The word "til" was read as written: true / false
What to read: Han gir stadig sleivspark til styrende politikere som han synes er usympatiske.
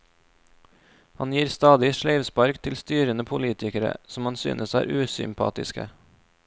true